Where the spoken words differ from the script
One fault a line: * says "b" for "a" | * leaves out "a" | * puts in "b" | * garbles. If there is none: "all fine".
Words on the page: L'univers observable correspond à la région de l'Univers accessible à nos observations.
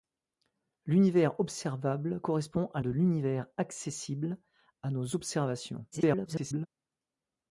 * leaves out "la région"
* garbles